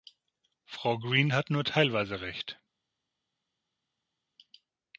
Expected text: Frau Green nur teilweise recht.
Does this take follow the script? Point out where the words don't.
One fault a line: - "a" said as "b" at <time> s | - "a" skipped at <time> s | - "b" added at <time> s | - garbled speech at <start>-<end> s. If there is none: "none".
- "hat" added at 1.3 s